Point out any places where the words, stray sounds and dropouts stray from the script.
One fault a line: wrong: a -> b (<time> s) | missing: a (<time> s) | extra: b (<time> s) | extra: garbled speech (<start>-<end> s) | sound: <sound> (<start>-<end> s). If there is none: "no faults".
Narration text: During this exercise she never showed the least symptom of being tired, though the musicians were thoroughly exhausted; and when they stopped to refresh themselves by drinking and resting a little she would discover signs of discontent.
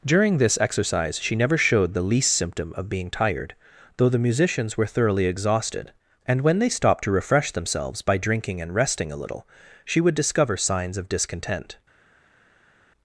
no faults